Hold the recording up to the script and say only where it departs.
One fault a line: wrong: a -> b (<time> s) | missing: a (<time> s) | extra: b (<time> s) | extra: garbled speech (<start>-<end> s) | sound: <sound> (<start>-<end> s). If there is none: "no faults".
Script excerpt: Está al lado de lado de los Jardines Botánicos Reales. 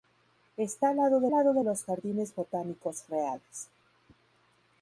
no faults